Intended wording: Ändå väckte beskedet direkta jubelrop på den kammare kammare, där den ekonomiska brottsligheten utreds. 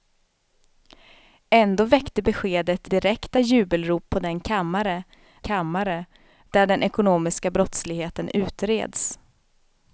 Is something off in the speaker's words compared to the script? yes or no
no